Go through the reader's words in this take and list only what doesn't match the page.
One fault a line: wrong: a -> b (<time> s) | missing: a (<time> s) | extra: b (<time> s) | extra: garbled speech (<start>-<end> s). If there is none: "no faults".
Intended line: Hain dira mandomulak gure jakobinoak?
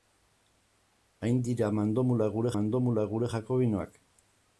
extra: mandomulak gure (2.6 s)